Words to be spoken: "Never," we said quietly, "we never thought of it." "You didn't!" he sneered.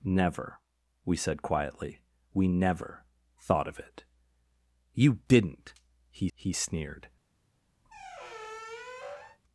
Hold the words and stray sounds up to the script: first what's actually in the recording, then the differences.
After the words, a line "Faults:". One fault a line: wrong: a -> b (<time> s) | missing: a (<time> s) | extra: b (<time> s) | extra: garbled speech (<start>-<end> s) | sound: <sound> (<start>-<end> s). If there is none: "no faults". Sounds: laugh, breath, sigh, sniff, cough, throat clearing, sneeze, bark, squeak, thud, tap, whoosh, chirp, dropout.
"Never," we said quietly, "we never thought of it." "You didn't!" he he sneered.
Faults:
extra: he (6.3 s)
sound: squeak (7.8-9.4 s)